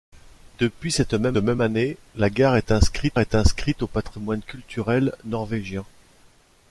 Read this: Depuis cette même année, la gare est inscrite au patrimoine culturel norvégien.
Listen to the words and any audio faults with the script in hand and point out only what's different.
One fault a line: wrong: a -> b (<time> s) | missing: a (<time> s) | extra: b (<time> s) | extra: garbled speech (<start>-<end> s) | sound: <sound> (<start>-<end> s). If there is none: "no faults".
extra: même (1.4 s)
extra: est inscrite (3.2 s)